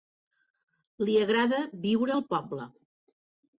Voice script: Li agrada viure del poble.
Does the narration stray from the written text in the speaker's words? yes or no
yes